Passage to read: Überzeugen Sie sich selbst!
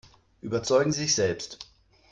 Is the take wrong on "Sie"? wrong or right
wrong